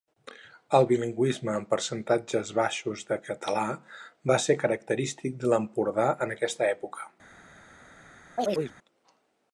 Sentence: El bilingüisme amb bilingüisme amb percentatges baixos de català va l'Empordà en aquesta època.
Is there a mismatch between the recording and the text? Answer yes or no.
yes